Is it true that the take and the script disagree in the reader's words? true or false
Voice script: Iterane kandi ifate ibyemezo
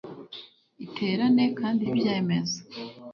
true